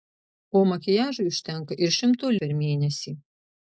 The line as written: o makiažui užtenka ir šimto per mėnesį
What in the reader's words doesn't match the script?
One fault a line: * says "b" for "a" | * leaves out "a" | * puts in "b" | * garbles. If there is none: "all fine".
all fine